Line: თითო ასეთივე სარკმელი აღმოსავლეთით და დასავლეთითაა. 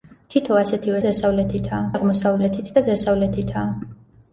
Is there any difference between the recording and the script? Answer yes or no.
yes